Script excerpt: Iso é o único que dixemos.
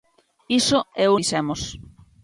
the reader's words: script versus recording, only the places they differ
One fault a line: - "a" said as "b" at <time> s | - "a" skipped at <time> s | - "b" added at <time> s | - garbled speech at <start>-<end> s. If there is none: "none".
- "único que" skipped at 1.1 s